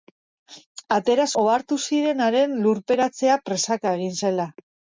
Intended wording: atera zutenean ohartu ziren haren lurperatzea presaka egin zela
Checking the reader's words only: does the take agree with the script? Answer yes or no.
no